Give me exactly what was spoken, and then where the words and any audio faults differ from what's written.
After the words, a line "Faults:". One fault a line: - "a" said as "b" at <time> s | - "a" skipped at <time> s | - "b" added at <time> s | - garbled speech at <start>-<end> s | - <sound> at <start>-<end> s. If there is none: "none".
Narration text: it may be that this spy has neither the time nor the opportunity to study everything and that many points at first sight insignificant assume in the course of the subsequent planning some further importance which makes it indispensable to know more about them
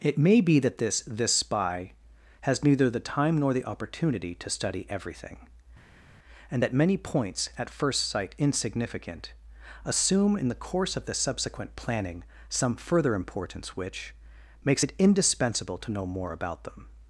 it may be that this this spy has neither the time nor the opportunity to study everything and that many points at first sight insignificant assume in the course of the subsequent planning some further importance which makes it indispensable to know more about them
Faults:
- "this" added at 1.1 s